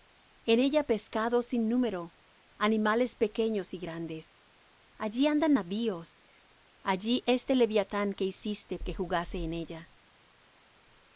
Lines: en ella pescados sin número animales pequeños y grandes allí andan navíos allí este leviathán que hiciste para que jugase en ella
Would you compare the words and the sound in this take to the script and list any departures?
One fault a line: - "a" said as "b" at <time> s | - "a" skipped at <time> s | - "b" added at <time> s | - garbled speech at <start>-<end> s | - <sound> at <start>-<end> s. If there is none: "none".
- "para" skipped at 8.8 s